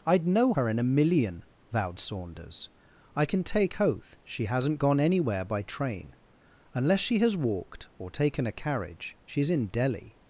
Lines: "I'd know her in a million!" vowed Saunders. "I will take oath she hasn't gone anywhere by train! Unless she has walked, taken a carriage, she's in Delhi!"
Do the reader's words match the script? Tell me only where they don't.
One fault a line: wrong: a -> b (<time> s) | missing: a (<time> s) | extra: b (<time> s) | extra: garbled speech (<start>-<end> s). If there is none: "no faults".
wrong: will -> can (3.2 s)
extra: or (8.0 s)